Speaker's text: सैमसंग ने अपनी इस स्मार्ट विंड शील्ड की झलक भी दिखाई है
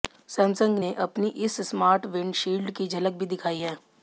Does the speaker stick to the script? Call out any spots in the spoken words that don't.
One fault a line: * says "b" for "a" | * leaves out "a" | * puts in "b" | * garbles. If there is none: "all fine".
all fine